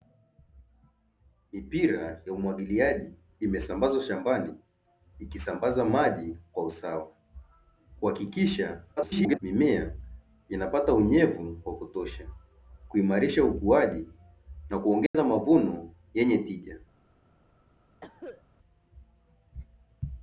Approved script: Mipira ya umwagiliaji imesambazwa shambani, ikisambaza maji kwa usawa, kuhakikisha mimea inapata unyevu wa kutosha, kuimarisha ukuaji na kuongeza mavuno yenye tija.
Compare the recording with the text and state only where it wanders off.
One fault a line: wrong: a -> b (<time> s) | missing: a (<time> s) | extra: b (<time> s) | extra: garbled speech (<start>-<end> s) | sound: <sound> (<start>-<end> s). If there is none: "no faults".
extra: garbled speech (9.0-9.4 s)
sound: dropout (15.1-15.1 s)
sound: cough (18.0-18.4 s)